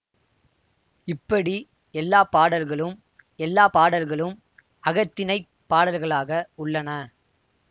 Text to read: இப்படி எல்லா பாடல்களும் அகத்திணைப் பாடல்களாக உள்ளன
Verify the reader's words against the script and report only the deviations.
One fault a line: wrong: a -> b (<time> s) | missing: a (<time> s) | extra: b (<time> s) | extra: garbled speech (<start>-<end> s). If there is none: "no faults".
extra: எல்லா பாடல்களும் (3.4 s)